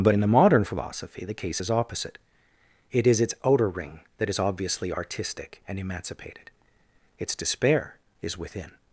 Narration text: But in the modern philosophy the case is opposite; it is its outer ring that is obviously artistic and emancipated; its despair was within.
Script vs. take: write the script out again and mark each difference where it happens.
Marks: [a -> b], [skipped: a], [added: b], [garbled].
But in the modern philosophy the case is opposite; it is its outer ring that is obviously artistic and emancipated; its despair [was -> is] within.